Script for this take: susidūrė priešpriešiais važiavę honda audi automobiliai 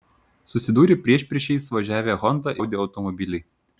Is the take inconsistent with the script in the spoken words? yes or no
no